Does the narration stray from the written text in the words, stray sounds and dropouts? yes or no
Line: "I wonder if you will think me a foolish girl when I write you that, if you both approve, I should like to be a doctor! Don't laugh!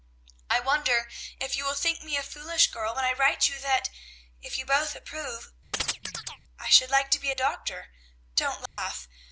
yes